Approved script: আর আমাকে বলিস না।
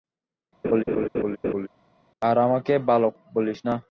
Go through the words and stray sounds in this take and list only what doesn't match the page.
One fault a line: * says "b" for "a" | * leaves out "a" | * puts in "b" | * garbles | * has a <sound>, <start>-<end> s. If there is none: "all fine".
* has a laugh, 0.6-1.7 s
* puts in "বালক"